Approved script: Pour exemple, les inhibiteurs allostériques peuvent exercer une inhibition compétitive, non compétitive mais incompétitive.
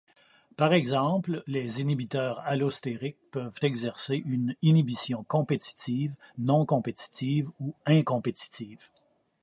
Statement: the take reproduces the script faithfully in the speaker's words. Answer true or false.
false